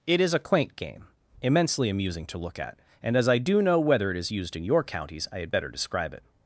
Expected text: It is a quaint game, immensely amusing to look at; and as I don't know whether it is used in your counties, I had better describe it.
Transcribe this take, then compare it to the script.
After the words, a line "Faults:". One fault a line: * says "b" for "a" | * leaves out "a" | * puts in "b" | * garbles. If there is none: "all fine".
It is a quaint game, immensely amusing to look at; and as I do know whether it is used in your counties, I had better describe it.
Faults:
* says "do" for "don't"